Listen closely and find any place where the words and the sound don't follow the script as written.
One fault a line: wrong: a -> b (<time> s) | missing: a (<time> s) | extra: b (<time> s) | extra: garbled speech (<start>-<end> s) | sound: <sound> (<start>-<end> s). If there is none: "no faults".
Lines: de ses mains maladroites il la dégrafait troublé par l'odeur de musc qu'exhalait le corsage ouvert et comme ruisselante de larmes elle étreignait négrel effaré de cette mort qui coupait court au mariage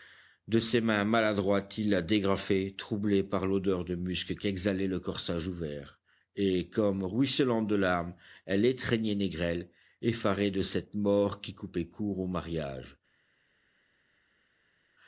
no faults